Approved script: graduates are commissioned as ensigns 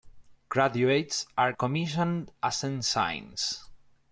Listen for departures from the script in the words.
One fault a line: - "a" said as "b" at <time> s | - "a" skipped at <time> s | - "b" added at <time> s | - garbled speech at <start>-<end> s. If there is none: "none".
none